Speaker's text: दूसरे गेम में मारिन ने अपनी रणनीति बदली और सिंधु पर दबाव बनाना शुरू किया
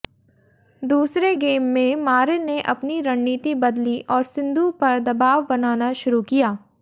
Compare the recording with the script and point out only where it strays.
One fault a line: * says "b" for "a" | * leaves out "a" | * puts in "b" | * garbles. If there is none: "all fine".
all fine